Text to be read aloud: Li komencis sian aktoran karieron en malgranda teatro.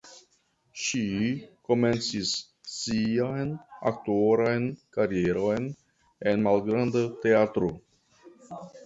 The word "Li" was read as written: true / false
false